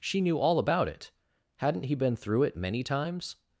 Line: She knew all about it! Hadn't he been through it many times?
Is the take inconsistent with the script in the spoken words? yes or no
no